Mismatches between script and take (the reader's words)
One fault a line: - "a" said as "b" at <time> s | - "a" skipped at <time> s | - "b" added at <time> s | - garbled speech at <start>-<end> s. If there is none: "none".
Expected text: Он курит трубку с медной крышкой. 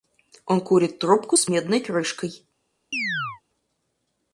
none